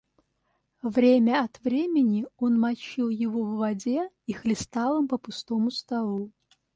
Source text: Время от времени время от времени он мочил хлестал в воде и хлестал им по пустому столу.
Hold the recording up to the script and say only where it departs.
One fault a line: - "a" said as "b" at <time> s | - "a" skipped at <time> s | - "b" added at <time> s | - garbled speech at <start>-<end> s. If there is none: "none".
- "время от времени" skipped at 2.2 s
- "хлестал" said as "его" at 3.1 s